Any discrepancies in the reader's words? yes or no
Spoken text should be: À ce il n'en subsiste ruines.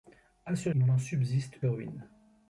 no